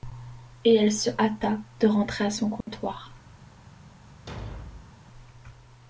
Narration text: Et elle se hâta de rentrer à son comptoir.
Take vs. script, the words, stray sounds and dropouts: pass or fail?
fail